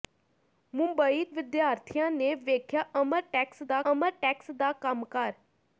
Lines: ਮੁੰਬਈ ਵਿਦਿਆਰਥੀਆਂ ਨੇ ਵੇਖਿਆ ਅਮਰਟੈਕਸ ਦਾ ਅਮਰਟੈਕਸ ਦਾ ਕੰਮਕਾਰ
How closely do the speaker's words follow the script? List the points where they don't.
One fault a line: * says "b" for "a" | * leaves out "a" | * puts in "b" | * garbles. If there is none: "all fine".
all fine